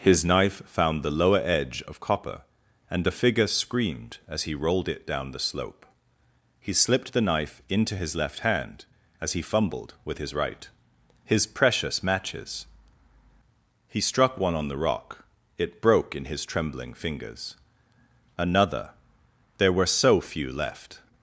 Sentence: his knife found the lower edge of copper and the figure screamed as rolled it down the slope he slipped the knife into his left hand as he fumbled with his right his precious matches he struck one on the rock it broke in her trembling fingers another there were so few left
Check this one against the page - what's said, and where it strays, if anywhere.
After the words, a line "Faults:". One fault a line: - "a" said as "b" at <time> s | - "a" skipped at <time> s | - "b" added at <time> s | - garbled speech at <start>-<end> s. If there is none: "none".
his knife found the lower edge of copper and the figure screamed as he rolled it down the slope he slipped the knife into his left hand as he fumbled with his right his precious matches he struck one on the rock it broke in his trembling fingers another there were so few left
Faults:
- "he" added at 4.4 s
- "her" said as "his" at 16.3 s